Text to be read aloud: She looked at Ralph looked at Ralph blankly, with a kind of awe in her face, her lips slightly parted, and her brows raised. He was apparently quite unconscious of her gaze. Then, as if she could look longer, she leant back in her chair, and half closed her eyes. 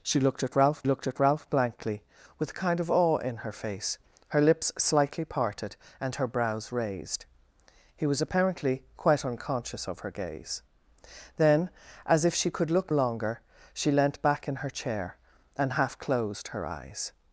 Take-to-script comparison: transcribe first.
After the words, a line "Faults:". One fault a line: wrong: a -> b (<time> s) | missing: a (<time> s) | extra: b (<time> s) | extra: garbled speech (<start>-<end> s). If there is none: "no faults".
She looked at Ralph looked at Ralph blankly, with a kind of awe in her face, her lips slightly parted, and her brows raised. He was apparently quite unconscious of her gaze. Then, as if she could look longer, she leant back in her chair, and half closed her eyes.
Faults:
no faults